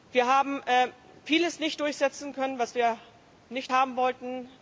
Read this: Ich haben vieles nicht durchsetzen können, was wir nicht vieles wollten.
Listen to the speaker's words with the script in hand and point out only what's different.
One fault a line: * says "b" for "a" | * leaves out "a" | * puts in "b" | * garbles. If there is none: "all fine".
* says "Wir" for "Ich"
* says "haben" for "vieles"